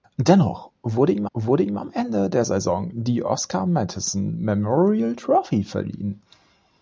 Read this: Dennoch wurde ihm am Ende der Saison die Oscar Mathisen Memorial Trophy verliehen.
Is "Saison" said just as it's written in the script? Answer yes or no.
yes